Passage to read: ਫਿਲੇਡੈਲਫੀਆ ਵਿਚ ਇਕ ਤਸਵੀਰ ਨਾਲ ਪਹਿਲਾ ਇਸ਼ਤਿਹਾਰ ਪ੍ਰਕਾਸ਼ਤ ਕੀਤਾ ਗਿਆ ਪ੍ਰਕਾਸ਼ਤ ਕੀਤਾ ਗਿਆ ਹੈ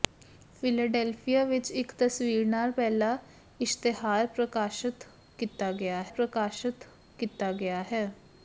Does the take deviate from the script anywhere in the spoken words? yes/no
no